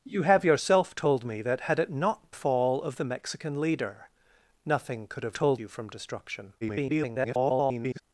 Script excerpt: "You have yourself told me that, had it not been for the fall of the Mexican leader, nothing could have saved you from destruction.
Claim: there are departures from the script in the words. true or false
true